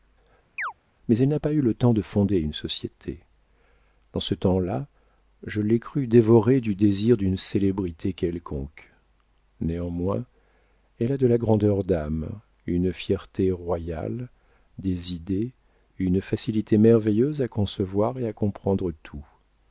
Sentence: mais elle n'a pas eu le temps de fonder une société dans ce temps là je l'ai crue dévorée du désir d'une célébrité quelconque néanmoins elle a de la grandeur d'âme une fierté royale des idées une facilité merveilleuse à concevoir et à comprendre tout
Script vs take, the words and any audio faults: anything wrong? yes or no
yes